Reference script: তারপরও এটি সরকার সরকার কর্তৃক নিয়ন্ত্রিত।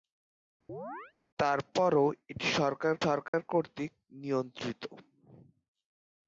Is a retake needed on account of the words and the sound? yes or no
yes